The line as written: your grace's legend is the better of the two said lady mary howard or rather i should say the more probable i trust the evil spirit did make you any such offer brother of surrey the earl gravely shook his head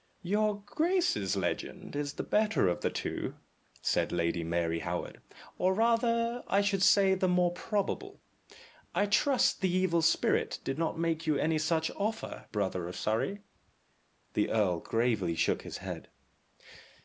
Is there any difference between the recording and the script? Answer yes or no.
yes